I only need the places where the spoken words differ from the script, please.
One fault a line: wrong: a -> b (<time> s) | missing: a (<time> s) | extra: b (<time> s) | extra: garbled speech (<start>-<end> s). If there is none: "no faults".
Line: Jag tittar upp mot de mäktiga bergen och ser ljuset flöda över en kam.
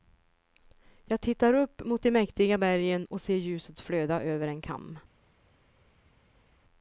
no faults